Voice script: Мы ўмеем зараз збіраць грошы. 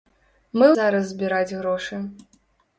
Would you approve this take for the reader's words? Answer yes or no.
no